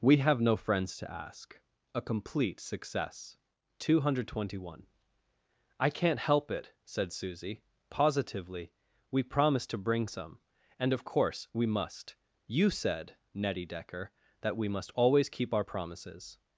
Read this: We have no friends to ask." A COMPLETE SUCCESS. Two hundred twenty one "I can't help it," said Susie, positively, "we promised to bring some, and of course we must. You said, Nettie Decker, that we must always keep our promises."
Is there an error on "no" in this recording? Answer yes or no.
no